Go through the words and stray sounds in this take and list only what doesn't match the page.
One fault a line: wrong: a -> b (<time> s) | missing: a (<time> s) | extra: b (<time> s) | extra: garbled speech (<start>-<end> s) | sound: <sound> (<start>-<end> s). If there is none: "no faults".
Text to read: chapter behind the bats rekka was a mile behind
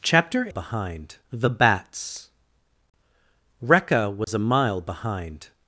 sound: dropout (4.2-4.3 s)